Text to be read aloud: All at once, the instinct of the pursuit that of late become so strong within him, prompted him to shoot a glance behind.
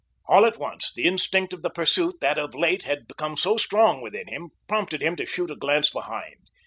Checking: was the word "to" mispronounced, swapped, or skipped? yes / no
no